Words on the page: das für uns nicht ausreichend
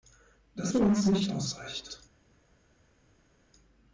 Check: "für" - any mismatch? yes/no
no